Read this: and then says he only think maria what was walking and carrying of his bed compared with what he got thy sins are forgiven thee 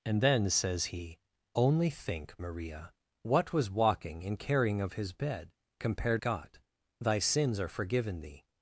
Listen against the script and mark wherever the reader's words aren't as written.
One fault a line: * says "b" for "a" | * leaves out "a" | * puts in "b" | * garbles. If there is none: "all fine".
* leaves out "with what he"